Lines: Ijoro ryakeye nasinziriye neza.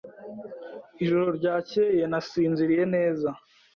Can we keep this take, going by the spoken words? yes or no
yes